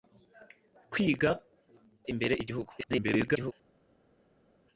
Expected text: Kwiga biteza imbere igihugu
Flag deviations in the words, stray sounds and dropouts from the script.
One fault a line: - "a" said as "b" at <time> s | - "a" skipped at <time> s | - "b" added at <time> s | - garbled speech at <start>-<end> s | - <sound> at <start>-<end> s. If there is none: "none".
- "biteza" skipped at 1.3 s
- garbled speech at 2.8-3.5 s